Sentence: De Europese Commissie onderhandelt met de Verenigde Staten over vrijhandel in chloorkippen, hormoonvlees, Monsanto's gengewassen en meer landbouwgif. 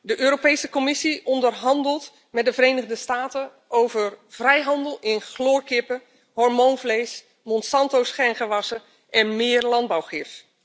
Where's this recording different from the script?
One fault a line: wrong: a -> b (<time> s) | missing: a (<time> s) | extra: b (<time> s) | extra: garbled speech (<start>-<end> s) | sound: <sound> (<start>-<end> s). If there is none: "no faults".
no faults